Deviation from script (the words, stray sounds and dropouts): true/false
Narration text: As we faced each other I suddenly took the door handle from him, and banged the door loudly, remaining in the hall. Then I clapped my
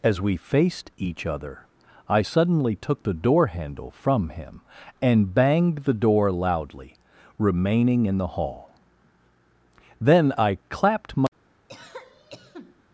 true